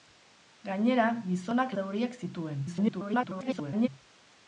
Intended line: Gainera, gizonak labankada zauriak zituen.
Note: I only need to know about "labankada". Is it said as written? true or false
false